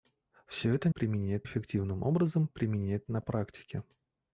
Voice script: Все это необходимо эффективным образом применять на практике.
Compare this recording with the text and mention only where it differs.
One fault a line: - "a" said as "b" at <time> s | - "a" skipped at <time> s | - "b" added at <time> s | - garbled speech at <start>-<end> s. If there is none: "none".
- "необходимо" said as "применять" at 0.9 s